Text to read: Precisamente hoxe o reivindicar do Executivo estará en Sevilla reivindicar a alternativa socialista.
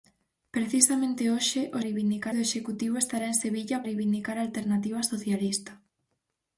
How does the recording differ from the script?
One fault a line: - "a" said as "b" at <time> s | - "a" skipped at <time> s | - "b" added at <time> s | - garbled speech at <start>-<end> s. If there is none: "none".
none